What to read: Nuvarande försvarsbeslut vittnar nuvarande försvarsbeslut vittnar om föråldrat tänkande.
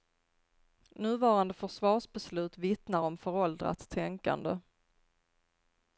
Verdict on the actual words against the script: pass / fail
fail